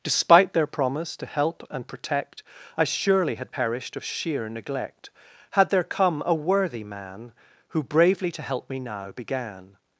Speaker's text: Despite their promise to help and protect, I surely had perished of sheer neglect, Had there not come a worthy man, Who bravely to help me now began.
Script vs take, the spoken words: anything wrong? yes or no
yes